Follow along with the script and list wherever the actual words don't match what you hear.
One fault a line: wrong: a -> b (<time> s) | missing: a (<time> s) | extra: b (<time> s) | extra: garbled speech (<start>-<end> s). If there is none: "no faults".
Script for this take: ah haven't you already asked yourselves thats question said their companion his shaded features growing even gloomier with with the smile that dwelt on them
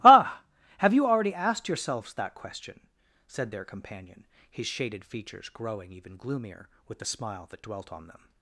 wrong: haven't -> have (0.8 s)
wrong: thats -> that (2.1 s)
missing: with (7.0 s)